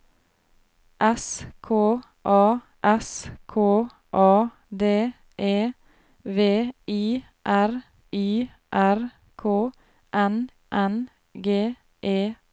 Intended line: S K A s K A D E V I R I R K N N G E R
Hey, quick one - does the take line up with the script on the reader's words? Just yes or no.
yes